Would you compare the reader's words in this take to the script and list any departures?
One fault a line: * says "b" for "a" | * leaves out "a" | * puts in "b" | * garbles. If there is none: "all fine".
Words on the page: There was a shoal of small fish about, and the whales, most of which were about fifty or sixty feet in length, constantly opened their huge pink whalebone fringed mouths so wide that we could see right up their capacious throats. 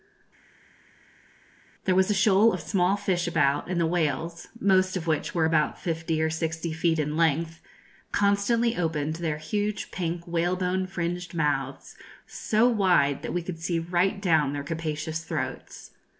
* says "down" for "up"